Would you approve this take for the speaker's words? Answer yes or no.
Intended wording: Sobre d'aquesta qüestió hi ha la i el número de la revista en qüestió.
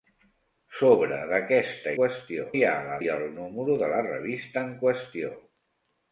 yes